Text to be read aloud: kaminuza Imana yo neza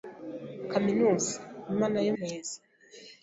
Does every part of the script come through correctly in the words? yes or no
yes